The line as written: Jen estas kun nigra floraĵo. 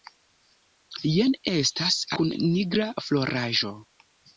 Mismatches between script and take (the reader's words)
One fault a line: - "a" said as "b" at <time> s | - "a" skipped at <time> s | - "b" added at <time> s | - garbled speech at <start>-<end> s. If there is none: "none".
none